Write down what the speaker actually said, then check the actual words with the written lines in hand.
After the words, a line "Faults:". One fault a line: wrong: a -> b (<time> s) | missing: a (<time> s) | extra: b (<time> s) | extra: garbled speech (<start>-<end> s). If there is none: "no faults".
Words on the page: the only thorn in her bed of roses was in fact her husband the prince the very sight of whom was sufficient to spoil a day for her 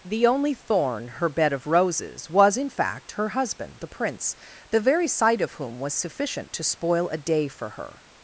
the only thorn her bed of roses was in fact her husband the prince the very sight of whom was sufficient to spoil a day for her
Faults:
missing: in (1.1 s)